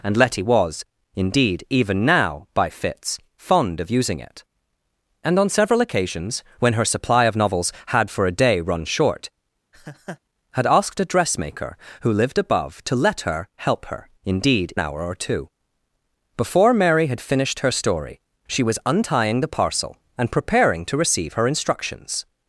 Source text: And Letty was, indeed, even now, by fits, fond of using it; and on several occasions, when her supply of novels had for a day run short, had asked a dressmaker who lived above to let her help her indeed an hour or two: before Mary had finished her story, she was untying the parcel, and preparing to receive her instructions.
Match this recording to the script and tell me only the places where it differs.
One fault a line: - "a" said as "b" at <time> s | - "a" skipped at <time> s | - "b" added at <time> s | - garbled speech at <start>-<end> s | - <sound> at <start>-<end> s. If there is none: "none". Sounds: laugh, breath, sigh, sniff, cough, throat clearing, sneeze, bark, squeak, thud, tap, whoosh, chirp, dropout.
- laugh at 9.7-10.2 s